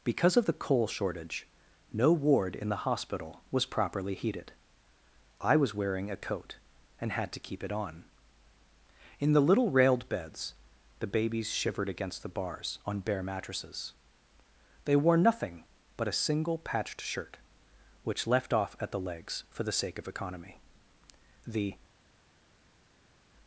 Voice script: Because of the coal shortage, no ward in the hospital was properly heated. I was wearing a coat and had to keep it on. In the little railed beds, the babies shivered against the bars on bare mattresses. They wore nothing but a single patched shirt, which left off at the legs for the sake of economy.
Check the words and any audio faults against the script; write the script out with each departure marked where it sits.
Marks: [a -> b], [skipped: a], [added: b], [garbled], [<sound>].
Because of the coal shortage, no ward in the hospital was properly heated. I was wearing a coat and had to keep it on. In the little railed beds, the babies shivered against the bars on bare mattresses. They wore nothing but a single patched shirt, which left off at the legs for the sake of economy. [added: The]